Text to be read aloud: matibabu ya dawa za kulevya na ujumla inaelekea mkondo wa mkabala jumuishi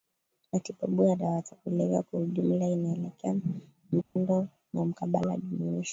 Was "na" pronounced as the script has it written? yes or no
no